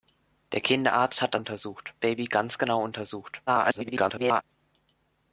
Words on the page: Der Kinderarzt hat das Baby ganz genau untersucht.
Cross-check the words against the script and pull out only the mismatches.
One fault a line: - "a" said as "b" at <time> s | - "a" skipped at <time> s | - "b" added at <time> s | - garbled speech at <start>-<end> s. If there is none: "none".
- "das" said as "untersucht" at 1.3 s
- garbled speech at 3.5-4.4 s